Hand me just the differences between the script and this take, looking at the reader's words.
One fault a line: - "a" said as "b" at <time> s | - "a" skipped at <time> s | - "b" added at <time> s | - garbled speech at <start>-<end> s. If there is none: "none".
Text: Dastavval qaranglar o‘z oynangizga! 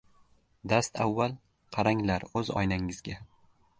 none